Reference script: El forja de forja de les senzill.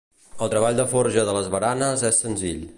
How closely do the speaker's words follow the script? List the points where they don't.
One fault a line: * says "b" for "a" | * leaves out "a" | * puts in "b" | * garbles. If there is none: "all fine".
* says "treball" for "forja"
* puts in "baranes és"